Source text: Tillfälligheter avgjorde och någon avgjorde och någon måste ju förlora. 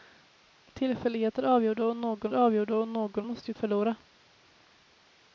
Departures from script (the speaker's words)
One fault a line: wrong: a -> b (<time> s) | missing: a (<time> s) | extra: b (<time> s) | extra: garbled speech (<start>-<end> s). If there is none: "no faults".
no faults